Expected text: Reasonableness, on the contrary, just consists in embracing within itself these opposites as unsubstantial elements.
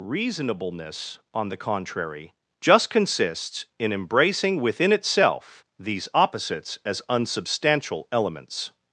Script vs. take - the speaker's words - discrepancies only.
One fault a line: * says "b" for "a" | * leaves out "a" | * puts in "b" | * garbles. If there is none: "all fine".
all fine